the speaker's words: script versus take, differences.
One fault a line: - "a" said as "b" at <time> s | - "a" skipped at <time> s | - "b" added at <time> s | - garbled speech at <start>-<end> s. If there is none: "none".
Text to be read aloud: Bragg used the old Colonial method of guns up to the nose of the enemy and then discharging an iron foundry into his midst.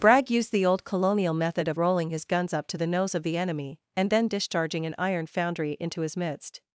- "rolling his" added at 1.7 s